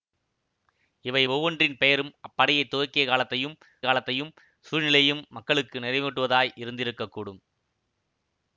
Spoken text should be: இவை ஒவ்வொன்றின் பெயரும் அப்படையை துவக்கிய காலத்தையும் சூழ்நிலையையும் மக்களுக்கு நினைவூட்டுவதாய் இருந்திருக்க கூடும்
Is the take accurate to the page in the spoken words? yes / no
no